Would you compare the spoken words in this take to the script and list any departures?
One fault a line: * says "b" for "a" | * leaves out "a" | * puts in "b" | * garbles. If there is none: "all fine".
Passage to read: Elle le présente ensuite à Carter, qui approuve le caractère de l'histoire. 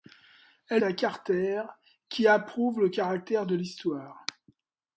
* leaves out "le présente ensuite"